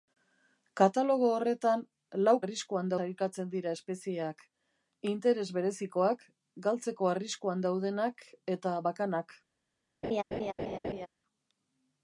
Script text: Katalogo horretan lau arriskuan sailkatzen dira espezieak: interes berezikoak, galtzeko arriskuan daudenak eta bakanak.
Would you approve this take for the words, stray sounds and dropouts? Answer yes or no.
no